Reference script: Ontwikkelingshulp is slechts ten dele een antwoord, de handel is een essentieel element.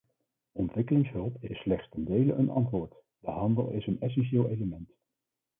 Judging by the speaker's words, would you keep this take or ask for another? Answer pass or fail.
fail